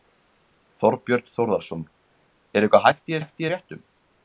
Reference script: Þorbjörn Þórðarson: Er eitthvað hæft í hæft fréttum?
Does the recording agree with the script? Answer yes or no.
yes